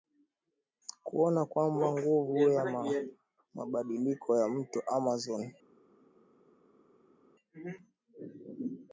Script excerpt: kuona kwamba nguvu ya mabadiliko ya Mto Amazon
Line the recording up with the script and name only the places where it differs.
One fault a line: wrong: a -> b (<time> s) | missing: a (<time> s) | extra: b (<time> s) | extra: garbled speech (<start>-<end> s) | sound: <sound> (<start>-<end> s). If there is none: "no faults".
no faults